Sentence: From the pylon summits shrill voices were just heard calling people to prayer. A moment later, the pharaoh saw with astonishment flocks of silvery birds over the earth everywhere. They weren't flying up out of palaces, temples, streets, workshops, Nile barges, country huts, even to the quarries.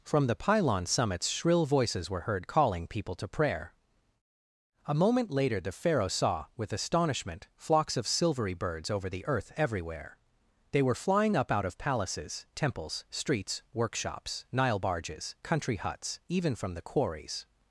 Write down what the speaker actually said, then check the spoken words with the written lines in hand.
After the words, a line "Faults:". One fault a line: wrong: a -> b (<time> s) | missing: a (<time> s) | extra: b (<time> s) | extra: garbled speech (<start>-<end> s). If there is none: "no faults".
From the pylon summits shrill voices were heard calling people to prayer. A moment later, the pharaoh saw with astonishment flocks of silvery birds over the earth everywhere. They were flying up out of palaces, temples, streets, workshops, Nile barges, country huts, even from the quarries.
Faults:
missing: just (2.2 s)
wrong: weren't -> were (10.8 s)
wrong: to -> from (16.6 s)